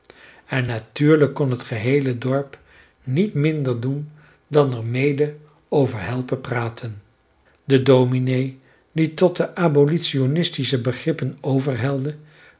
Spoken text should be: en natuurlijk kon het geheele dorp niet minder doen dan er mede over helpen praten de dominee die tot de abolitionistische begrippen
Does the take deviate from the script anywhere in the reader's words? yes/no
no